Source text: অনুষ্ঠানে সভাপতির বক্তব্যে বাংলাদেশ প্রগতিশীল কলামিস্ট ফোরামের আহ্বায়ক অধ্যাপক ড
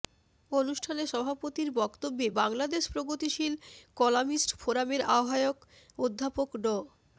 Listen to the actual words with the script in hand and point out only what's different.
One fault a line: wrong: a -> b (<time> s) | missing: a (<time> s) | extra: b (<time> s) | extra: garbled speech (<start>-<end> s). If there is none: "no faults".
no faults